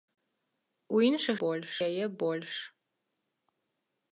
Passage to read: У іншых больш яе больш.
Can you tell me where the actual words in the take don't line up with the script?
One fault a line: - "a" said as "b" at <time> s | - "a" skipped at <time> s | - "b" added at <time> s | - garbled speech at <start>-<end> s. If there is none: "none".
none